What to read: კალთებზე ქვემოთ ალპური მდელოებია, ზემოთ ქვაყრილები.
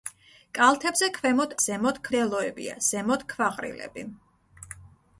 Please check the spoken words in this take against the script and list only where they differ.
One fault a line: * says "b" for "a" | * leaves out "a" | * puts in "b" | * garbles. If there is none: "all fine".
* says "ზემოთ" for "ალპური"